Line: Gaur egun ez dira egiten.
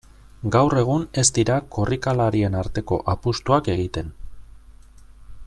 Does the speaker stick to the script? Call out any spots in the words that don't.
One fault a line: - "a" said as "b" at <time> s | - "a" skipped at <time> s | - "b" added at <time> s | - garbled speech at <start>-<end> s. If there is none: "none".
- "korrikalarien arteko apustuak" added at 1.8 s